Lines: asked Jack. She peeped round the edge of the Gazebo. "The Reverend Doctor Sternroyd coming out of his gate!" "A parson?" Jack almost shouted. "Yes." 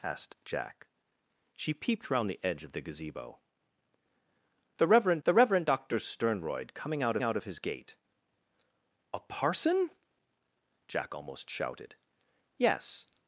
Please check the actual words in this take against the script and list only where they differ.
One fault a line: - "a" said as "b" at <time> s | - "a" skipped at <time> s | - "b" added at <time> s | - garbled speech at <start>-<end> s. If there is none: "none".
- "the Reverend" added at 5.2 s
- "out" added at 7.2 s